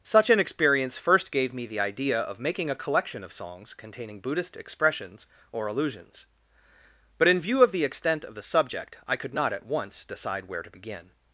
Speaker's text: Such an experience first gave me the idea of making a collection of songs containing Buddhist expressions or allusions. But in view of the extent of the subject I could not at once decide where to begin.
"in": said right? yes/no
yes